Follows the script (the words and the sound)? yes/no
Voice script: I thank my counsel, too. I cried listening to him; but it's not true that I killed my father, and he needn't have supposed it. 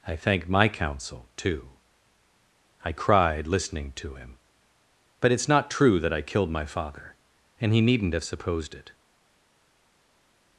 yes